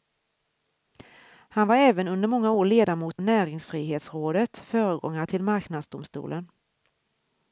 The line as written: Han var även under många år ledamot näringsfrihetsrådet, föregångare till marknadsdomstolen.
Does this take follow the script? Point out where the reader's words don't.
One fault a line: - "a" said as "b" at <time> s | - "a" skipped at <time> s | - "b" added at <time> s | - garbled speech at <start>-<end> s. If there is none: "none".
none